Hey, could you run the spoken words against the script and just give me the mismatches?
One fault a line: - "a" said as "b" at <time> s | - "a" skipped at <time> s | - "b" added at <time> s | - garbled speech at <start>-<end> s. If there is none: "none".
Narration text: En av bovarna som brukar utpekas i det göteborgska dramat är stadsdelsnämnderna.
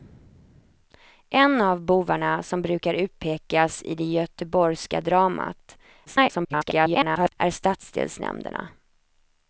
- garbled speech at 6.1-7.3 s